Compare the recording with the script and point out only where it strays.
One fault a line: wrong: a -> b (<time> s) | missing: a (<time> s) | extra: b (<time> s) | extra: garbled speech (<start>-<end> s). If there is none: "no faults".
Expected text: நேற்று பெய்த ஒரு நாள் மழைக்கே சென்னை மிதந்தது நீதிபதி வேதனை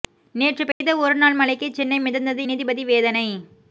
no faults